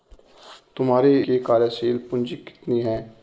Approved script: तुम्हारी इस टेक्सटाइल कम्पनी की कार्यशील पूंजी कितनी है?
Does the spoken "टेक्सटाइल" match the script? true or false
false